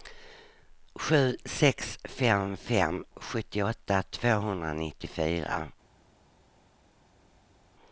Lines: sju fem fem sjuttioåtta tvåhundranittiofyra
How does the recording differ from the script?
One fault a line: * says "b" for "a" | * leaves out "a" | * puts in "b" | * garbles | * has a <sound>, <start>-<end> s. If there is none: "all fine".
* puts in "sex"